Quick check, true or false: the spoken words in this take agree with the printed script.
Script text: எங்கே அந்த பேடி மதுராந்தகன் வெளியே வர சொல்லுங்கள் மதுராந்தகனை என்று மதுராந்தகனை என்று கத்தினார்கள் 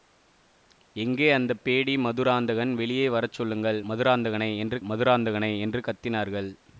true